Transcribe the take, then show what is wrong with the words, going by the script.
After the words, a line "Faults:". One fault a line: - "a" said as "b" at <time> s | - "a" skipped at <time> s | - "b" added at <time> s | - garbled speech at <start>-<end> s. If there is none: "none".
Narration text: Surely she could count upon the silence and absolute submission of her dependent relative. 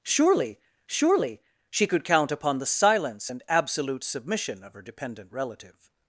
Surely surely she could count upon the silence and absolute submission of her dependent relative.
Faults:
- "surely" added at 0.9 s